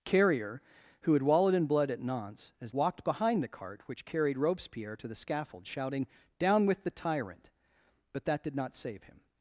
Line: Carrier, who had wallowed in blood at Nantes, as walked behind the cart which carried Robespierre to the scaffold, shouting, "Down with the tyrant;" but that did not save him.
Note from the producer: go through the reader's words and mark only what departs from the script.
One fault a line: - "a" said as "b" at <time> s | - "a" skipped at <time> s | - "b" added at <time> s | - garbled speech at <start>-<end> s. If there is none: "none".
none